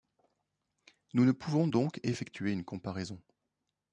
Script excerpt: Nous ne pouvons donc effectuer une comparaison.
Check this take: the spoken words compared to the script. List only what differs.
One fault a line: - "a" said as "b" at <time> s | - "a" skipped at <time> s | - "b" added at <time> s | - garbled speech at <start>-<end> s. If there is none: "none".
none